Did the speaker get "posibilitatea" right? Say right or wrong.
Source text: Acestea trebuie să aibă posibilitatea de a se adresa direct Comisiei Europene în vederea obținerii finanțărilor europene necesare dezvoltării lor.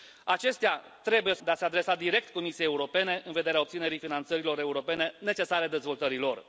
wrong